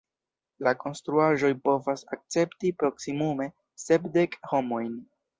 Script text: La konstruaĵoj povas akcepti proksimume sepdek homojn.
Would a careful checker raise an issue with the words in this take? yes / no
no